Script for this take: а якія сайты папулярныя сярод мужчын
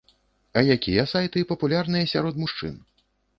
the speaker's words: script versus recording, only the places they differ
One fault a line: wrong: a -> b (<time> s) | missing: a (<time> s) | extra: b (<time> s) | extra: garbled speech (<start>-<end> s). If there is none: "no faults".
no faults